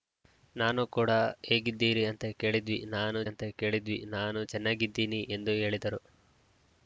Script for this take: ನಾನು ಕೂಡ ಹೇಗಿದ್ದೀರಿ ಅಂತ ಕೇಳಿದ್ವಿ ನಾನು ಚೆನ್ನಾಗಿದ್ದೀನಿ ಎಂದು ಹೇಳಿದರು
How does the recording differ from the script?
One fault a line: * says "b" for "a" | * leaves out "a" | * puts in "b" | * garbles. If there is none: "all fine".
* puts in "ಅಂತ ಕೇಳಿದ್ವಿ ನಾನು"